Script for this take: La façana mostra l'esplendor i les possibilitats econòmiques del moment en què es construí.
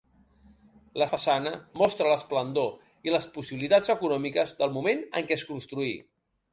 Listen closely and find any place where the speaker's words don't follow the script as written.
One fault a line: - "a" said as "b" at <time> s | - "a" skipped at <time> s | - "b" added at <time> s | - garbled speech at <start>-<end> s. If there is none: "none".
none